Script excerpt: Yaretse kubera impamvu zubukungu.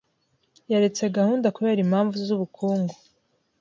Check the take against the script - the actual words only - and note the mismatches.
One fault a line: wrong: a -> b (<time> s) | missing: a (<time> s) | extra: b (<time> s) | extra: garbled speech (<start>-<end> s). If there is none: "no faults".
extra: gahunda (1.2 s)